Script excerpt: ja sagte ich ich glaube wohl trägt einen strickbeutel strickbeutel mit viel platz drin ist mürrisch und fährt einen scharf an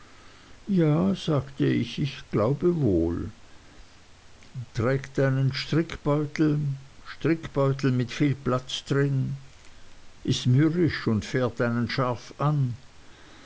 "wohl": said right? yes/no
yes